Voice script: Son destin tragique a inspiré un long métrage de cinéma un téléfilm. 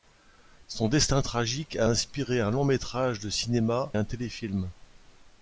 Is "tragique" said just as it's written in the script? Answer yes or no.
yes